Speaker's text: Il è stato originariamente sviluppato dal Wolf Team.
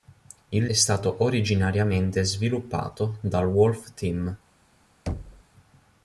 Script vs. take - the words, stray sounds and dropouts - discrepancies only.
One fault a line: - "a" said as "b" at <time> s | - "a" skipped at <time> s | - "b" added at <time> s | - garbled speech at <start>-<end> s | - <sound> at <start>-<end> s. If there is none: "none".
- thud at 5.1-5.4 s